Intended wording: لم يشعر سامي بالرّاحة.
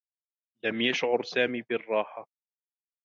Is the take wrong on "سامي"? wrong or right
right